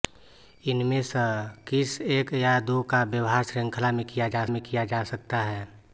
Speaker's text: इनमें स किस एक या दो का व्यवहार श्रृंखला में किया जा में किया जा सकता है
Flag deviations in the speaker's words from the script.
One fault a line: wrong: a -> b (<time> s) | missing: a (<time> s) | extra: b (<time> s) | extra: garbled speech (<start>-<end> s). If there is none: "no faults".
no faults